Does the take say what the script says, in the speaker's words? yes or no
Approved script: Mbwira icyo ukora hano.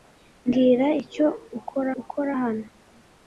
no